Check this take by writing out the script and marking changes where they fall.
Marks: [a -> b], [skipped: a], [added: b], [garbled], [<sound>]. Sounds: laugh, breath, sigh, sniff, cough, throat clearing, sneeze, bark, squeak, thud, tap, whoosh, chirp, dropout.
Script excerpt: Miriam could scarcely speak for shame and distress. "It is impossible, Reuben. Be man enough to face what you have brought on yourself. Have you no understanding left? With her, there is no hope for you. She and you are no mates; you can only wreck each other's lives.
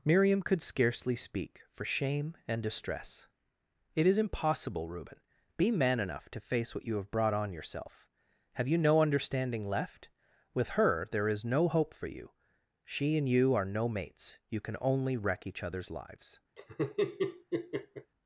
Miriam could scarcely speak for shame and distress. "It is impossible, Reuben. Be man enough to face what you have brought on yourself. Have you no understanding left? With her, there is no hope for you. She and you are no mates; you can only wreck each other's lives. [laugh]